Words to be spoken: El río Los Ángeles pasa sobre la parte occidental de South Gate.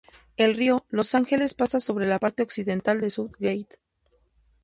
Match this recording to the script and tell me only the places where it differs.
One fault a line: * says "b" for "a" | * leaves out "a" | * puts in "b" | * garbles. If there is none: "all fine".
all fine